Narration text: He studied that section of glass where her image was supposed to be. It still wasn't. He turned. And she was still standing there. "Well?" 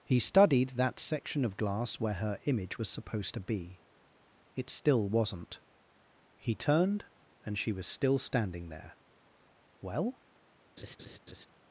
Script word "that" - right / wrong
right